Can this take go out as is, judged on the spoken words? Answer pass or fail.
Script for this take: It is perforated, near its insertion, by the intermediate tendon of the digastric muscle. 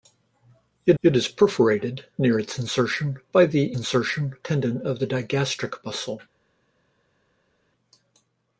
fail